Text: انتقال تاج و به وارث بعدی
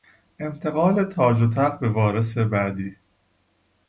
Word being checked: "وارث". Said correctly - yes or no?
yes